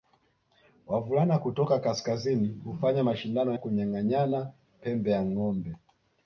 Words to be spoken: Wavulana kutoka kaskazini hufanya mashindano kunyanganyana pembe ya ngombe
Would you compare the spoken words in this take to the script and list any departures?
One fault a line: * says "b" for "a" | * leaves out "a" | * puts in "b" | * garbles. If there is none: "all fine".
all fine